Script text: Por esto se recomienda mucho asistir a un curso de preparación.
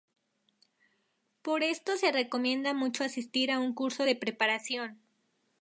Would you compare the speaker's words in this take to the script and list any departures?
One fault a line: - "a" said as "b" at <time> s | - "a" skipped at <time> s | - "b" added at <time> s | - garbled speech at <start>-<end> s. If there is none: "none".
none